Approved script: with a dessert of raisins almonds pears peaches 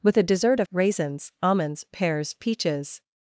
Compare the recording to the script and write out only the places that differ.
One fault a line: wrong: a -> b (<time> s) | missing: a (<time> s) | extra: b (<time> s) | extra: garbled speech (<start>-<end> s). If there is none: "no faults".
no faults